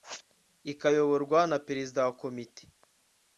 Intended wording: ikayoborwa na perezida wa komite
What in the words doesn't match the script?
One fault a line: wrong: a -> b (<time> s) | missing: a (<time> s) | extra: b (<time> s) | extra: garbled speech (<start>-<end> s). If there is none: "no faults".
no faults